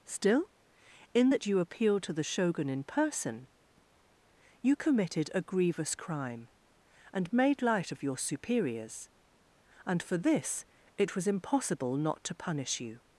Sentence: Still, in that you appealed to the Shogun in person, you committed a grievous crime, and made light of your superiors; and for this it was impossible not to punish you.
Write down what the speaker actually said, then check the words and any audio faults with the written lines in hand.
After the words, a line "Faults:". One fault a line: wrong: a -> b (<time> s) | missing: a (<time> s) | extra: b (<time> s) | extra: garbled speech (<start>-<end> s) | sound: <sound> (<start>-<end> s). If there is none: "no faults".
Still, in that you appealed to the Shogun in person, you committed a grievous crime, and made light of your superiors; and for this it was impossible not to punish you.
Faults:
no faults